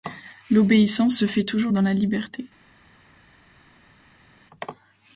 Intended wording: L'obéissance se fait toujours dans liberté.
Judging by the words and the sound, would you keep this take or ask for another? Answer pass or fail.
fail